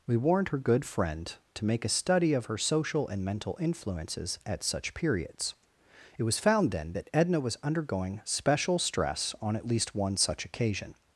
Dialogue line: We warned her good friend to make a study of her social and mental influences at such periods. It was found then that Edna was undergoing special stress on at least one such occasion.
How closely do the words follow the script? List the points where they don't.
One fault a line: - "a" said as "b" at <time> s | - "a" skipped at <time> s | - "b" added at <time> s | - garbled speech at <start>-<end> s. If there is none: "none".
none